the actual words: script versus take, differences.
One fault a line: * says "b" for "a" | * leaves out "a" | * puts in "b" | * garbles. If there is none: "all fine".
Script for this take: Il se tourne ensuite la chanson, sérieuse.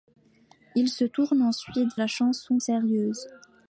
all fine